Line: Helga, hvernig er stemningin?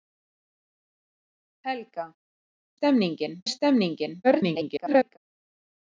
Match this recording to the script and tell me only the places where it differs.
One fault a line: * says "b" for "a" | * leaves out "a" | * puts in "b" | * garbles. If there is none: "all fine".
* says "stemningin" for "hvernig"
* garbles